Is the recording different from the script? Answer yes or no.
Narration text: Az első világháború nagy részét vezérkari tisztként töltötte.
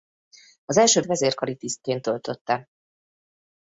yes